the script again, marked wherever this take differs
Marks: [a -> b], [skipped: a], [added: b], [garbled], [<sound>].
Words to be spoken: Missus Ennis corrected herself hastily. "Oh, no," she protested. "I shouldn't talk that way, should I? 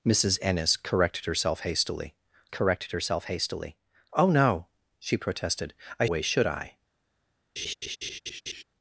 Missus Ennis corrected herself hastily. [added: corrected herself hastily] "Oh, no," she protested. "I [skipped: shouldn't talk that] way, should I? [laugh]